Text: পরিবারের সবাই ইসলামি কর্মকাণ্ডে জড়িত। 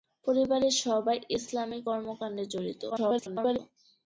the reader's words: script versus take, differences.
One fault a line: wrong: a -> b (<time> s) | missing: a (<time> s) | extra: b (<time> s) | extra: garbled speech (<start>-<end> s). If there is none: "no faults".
extra: garbled speech (2.9-3.6 s)